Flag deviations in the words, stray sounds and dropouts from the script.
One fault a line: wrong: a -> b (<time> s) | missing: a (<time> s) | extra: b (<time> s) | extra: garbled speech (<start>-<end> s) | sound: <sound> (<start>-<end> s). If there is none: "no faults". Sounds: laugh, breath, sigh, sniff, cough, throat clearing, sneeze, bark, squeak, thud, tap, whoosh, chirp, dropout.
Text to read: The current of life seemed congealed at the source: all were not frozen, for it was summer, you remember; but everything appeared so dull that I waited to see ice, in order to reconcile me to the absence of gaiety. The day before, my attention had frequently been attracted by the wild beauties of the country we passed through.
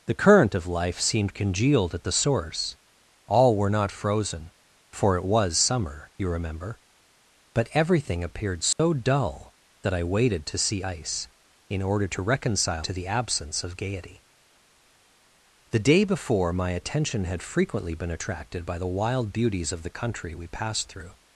sound: dropout (8.7-8.8 s)
missing: me (12.9 s)